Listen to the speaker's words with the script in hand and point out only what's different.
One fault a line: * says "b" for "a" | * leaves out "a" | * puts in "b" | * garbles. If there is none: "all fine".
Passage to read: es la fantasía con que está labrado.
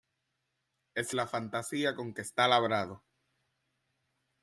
all fine